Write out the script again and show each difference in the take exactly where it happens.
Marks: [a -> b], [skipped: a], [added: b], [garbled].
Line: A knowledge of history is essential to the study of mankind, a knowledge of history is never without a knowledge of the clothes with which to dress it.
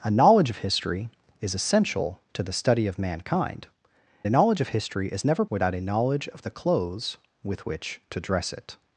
A knowledge of history is essential to the study of mankind, a knowledge of history is never without a knowledge of the clothes with which to dress it.